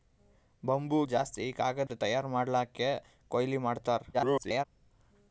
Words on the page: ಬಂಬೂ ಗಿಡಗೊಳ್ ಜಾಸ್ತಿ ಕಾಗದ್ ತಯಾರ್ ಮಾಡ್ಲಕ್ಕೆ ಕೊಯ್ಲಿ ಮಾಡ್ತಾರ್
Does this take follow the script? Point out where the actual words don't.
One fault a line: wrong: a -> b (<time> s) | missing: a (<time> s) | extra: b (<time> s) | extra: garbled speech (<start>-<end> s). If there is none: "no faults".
missing: ಗಿಡಗೊಳ್ (1.0 s)
extra: garbled speech (4.1-4.7 s)